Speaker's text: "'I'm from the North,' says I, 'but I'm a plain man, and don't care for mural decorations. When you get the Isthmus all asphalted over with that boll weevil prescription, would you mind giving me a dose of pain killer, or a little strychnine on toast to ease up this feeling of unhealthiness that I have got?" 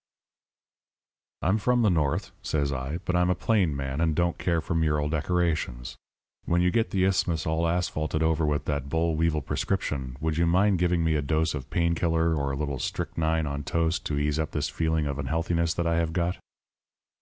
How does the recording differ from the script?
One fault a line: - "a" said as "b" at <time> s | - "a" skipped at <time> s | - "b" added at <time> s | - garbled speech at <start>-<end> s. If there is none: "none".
none